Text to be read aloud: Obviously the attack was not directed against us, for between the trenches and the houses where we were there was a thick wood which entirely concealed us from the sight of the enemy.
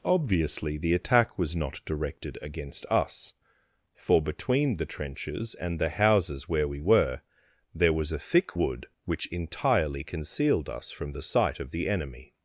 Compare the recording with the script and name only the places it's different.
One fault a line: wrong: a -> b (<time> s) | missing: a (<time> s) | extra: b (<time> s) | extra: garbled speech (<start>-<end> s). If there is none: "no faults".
no faults